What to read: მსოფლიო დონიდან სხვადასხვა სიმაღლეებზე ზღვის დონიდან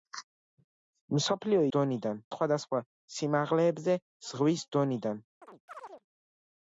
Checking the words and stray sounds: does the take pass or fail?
fail